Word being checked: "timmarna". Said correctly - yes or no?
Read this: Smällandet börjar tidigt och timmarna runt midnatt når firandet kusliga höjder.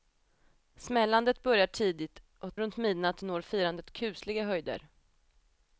no